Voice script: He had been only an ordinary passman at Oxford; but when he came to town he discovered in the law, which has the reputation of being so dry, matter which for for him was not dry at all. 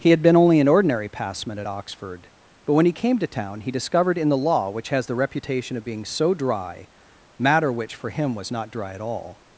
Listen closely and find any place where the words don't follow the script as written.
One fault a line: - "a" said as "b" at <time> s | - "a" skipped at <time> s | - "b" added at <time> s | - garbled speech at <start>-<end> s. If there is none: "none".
- "for" skipped at 8.1 s